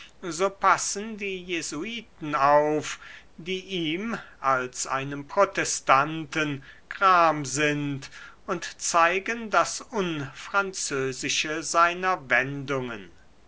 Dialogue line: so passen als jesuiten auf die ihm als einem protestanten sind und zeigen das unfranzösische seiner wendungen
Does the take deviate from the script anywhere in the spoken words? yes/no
yes